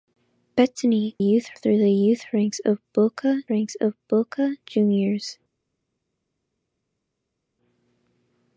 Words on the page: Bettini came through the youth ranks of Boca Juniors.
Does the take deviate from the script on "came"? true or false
true